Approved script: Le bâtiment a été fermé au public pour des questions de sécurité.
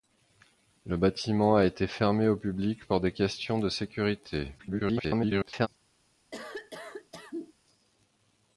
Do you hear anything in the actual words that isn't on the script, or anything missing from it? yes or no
yes